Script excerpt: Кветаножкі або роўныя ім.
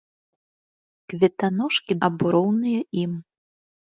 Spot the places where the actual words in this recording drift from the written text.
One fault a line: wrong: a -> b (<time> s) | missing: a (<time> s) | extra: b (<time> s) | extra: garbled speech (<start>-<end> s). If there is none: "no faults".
no faults